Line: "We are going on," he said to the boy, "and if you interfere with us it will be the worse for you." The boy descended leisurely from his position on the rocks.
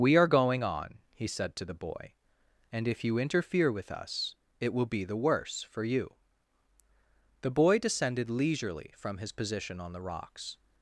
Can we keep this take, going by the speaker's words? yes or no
yes